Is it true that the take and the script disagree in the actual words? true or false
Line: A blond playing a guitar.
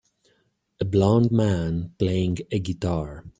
true